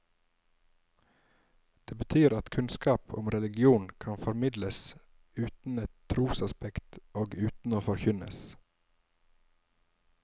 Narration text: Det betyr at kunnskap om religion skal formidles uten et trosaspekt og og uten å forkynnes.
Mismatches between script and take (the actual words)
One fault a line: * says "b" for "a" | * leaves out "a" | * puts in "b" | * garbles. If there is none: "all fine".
* says "kan" for "skal"
* leaves out "og"